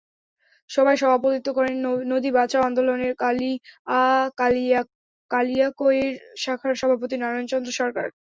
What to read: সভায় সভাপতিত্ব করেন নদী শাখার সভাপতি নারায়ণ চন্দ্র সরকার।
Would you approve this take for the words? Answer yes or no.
no